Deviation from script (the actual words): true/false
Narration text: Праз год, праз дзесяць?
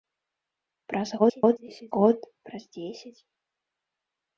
true